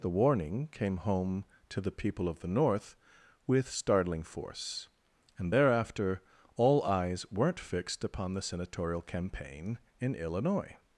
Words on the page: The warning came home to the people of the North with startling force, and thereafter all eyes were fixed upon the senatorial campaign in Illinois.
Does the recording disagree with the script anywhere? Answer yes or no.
yes